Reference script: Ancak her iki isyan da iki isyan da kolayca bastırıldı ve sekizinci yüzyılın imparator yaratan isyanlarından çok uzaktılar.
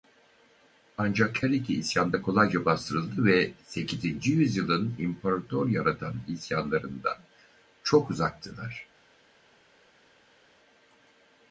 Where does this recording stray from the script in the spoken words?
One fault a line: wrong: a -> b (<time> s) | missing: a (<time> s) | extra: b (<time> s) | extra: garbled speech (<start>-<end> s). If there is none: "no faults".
missing: iki isyan da (2.2 s)